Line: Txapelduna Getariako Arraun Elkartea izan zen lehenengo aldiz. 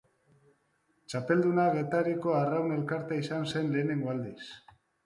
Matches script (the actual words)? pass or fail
pass